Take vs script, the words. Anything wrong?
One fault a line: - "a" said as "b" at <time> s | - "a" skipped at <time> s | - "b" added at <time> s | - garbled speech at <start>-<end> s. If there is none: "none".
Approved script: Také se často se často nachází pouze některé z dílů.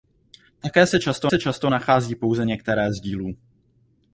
none